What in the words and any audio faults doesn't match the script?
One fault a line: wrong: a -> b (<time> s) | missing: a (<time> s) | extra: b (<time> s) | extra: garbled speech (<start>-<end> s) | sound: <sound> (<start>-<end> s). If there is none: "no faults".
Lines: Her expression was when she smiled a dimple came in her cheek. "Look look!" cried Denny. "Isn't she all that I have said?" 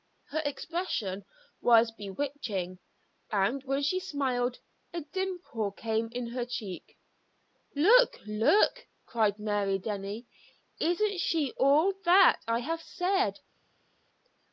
extra: bewitching and (1.9 s)
extra: Mary (9.4 s)